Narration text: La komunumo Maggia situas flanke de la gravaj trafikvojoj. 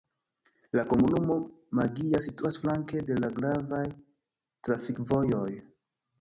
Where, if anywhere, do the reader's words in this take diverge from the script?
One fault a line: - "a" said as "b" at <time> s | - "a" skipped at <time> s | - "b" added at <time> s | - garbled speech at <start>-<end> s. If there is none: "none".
none